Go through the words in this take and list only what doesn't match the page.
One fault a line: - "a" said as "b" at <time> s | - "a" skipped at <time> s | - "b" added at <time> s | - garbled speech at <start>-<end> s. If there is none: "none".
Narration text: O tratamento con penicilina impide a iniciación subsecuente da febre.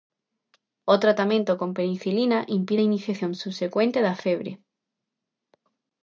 none